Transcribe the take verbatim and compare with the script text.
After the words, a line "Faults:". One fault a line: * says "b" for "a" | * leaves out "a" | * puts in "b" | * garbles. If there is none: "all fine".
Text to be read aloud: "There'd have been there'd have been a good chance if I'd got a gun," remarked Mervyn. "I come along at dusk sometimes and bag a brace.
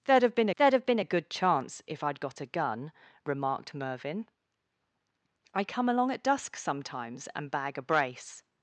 "There'd have been there'd have been a good chance if I'd got a gun," remarked Mervyn. "I come along at dusk sometimes and bag a brace.
Faults:
all fine